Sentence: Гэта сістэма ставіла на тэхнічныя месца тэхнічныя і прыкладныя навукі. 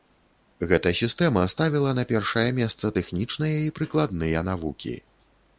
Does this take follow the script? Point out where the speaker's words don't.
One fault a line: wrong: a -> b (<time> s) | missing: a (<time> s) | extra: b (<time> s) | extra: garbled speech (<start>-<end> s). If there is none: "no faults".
wrong: тэхнічныя -> першае (2.1 s)